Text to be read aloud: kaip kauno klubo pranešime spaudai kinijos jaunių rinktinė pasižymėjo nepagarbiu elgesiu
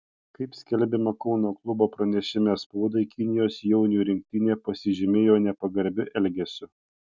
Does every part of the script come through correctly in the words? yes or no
no